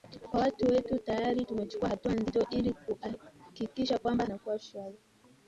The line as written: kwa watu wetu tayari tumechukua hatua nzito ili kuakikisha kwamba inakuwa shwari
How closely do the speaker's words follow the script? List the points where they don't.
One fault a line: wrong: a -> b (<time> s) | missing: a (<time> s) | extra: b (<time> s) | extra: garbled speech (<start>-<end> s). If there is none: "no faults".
no faults